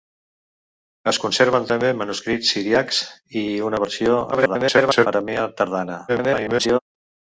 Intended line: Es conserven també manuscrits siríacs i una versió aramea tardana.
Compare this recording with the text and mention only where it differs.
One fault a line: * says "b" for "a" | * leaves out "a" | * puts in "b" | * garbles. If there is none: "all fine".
* garbles
* garbles